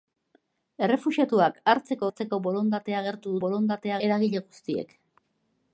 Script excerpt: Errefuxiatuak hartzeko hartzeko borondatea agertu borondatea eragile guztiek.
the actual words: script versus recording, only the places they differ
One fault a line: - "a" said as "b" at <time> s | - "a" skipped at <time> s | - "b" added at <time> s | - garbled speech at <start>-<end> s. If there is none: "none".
none